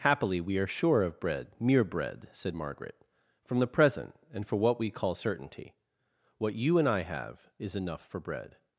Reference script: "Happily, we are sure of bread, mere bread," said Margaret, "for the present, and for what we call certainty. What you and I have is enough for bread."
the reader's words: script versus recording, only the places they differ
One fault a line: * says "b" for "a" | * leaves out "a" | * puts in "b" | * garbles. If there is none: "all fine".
* says "from" for "for"